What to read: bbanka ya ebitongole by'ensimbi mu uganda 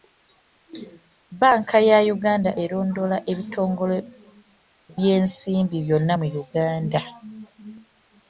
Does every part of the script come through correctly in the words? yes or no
no